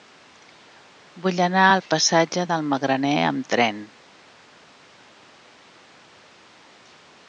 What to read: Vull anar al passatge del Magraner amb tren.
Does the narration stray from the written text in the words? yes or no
no